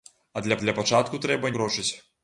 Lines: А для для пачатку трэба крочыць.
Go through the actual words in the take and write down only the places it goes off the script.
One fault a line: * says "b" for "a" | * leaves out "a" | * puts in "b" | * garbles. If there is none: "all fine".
all fine